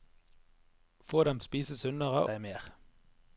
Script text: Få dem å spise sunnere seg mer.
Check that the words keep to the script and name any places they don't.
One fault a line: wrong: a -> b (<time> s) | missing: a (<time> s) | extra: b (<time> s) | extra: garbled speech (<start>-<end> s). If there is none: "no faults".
no faults